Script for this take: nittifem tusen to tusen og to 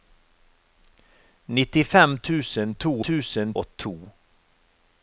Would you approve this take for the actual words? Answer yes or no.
yes